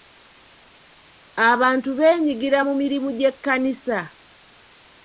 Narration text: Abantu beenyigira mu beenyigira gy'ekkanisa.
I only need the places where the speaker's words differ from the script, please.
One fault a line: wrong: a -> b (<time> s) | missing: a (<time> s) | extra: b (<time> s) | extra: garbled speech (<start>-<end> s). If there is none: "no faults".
wrong: beenyigira -> mirimu (2.8 s)